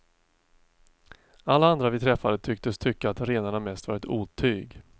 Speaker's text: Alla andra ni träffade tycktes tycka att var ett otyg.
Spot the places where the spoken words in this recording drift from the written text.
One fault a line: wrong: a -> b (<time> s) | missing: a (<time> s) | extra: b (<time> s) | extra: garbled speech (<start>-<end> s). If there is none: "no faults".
wrong: ni -> vi (1.9 s)
extra: renarna mest (3.2 s)